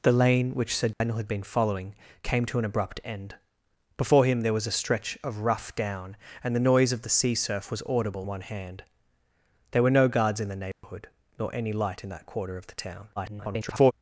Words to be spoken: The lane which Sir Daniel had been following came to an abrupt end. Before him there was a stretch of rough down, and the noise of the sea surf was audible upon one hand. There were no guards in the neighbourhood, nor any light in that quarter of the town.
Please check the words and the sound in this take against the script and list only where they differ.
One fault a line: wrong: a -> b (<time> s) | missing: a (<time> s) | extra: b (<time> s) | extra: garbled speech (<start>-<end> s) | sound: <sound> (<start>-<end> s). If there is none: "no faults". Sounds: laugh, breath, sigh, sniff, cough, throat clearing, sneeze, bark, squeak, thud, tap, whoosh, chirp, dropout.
sound: dropout (0.9-1.0 s)
missing: upon (8.3 s)
sound: dropout (10.7-10.8 s)
extra: garbled speech (13.2-13.9 s)